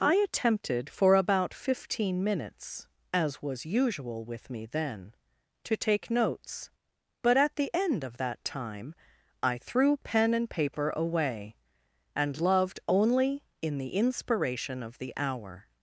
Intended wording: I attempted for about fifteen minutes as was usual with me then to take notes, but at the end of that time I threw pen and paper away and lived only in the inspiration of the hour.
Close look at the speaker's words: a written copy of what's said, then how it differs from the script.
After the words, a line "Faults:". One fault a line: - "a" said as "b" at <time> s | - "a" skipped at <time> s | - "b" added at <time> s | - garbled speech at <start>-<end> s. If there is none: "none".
I attempted for about fifteen minutes as was usual with me then to take notes, but at the end of that time I threw pen and paper away and loved only in the inspiration of the hour.
Faults:
- "lived" said as "loved" at 12.4 s